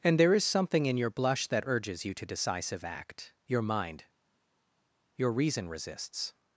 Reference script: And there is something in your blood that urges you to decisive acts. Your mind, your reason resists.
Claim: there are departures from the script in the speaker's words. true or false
true